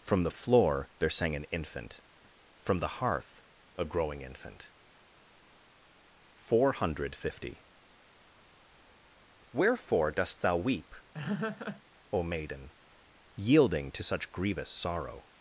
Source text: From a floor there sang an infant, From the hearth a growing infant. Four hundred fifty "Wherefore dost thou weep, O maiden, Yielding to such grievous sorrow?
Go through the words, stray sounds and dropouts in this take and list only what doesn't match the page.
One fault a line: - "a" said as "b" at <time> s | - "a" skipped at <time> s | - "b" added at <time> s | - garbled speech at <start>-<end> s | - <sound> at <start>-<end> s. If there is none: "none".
- "a" said as "the" at 0.2 s
- laugh at 11.1-11.8 s